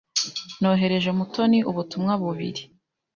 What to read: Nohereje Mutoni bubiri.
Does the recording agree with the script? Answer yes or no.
no